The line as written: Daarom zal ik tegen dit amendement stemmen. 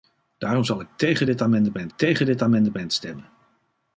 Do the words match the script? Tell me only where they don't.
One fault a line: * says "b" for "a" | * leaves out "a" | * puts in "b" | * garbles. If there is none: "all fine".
* puts in "tegen dit amendement"